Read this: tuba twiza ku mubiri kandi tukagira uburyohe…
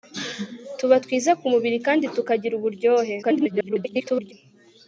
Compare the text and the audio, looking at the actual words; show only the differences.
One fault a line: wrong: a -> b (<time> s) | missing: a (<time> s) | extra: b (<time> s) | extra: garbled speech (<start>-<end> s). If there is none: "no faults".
extra: garbled speech (3.2-4.3 s)